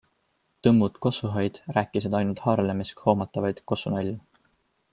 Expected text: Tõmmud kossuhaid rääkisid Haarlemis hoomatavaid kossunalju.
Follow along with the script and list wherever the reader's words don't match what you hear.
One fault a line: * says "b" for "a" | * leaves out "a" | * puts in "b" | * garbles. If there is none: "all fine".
* puts in "ainult"